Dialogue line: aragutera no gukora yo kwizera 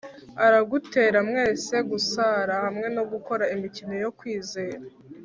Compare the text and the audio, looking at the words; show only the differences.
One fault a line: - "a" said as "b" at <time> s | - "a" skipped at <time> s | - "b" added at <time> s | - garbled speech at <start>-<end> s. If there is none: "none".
- "mwese gusara hamwe" added at 1.3 s
- "imikino" added at 3.5 s